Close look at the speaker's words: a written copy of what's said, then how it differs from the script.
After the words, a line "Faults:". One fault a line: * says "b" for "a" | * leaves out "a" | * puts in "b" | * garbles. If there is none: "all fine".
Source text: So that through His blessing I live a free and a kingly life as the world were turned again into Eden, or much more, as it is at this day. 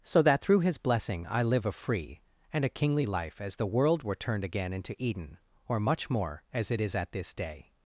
So that through His blessing I live a free and a kingly life as the world were turned again into Eden, or much more, as it is at this day.
Faults:
all fine